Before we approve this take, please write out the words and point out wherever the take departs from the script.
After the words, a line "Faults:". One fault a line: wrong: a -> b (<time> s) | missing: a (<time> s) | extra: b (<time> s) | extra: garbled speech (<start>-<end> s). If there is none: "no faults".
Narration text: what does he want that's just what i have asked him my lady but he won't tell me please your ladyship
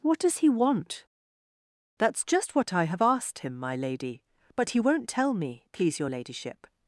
what does he want that's just what i have asked him my lady but he won't tell me please your ladyship
Faults:
no faults